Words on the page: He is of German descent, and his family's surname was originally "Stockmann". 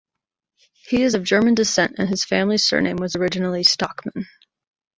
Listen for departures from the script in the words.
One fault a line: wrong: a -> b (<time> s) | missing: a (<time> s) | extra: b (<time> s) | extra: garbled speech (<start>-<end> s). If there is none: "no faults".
no faults